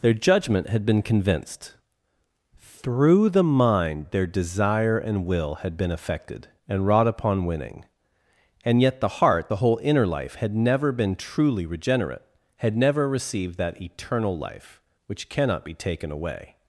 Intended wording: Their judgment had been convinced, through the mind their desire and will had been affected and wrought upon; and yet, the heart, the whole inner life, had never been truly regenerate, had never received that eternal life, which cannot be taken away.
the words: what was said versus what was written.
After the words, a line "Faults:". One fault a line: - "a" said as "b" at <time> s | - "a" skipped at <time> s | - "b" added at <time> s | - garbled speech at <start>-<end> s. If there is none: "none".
Their judgment had been convinced, through the mind their desire and will had been affected and wrought upon; winning and yet, the heart, the whole inner life, had never been truly regenerate, had never received that eternal life, which cannot be taken away.
Faults:
- "winning" added at 7.4 s